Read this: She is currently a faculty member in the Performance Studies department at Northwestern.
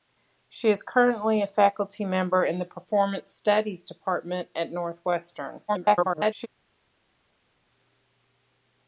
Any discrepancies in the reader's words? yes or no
yes